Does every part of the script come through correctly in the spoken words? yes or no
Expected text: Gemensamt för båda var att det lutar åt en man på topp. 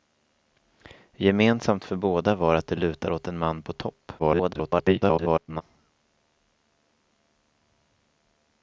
no